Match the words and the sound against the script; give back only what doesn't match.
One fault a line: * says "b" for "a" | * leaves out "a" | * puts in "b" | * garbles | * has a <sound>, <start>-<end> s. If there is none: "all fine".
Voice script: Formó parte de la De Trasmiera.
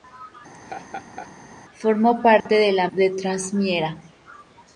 * has a laugh, 0.5-1.3 s
* has a dropout, 2.4-2.5 s